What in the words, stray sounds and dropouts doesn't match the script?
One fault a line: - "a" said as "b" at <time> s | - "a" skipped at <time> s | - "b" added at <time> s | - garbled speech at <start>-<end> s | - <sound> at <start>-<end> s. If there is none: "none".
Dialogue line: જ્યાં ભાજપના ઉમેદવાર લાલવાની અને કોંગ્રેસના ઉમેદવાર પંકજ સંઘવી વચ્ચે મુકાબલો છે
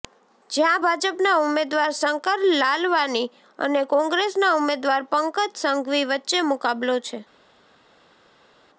- "શંકર" added at 1.9 s